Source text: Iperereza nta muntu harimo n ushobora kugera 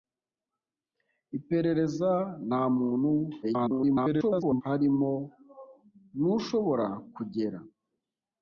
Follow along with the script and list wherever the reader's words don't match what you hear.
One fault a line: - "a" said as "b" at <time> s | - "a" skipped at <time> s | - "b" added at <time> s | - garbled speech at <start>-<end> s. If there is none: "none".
- garbled speech at 3.4-4.6 s